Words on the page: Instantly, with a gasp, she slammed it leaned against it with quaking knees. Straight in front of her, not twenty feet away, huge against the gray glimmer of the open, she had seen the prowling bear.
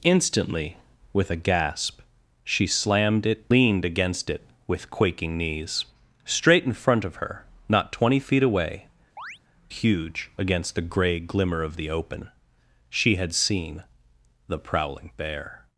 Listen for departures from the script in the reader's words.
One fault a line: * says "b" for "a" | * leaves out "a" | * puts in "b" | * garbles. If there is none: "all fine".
all fine